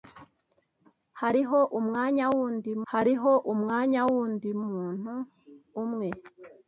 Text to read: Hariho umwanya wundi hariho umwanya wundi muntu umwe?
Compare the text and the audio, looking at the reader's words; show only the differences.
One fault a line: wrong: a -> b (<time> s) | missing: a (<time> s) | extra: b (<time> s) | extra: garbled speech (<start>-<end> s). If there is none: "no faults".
no faults